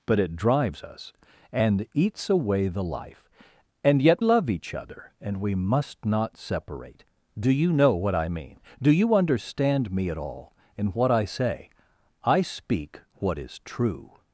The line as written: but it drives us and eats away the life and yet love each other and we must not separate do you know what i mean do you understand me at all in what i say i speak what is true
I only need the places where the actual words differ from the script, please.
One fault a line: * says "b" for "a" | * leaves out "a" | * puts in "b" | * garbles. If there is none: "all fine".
all fine